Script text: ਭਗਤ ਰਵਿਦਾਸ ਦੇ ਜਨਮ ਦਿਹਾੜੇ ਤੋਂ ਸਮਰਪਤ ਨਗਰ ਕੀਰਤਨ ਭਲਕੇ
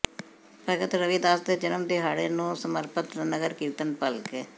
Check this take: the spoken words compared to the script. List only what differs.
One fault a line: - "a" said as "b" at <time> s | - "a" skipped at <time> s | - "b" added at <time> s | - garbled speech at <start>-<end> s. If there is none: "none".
- "ਤੋਂ" said as "ਨੂੰ" at 2.3 s